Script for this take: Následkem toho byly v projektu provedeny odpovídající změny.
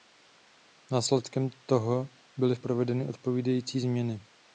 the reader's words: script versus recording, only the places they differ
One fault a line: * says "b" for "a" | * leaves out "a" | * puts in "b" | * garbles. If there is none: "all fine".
* leaves out "projektu"